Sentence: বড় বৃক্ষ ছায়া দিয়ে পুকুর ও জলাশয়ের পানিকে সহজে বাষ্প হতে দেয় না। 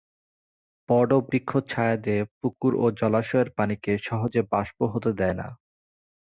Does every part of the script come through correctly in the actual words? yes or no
yes